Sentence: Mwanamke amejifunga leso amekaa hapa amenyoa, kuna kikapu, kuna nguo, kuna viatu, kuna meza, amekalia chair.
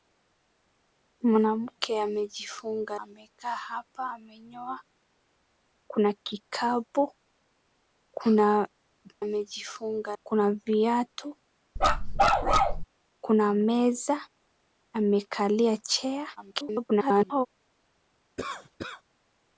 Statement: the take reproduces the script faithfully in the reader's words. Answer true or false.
false